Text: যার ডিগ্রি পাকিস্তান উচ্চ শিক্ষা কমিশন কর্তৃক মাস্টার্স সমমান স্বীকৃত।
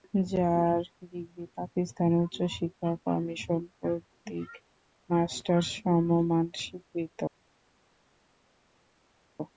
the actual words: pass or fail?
pass